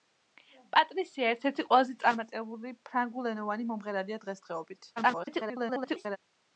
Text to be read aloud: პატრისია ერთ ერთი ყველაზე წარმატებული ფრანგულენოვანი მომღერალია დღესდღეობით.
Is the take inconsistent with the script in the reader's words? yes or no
yes